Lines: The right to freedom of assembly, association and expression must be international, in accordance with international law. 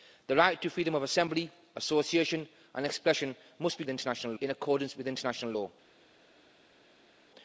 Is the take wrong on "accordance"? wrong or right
right